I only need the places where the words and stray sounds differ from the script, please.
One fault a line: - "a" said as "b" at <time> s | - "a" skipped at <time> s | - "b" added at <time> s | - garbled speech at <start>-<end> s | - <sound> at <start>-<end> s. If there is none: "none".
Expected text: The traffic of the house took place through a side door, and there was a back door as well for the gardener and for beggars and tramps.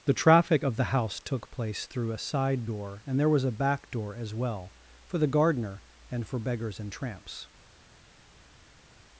none